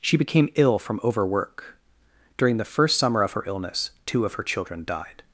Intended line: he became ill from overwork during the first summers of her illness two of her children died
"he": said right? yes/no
no